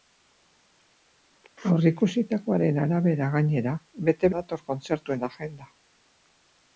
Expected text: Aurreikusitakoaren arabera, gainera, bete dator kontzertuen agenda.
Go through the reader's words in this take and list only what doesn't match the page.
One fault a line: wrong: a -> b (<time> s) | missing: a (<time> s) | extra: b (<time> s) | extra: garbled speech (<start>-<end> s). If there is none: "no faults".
no faults